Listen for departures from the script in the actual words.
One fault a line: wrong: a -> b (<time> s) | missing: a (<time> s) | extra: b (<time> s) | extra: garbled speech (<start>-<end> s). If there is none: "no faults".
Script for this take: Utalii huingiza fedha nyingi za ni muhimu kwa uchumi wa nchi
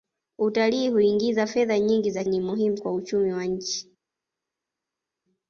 no faults